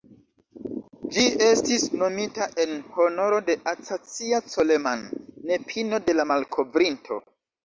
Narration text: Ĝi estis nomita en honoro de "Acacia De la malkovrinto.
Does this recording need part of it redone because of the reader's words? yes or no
yes